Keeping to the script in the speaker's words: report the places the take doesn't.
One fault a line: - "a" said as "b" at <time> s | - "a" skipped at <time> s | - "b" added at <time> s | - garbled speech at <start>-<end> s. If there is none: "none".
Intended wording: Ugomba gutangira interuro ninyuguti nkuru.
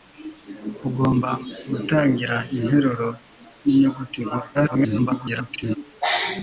- garbled speech at 4.5-5.8 s